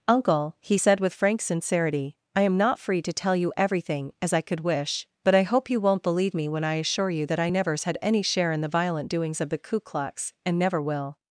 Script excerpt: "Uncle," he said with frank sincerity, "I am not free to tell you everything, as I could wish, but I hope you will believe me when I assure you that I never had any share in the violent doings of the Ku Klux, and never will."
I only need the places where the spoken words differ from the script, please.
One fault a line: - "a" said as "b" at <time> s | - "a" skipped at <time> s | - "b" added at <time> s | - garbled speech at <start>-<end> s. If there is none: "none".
- "will" said as "won't" at 5.8 s
- "never" said as "nevers" at 7.5 s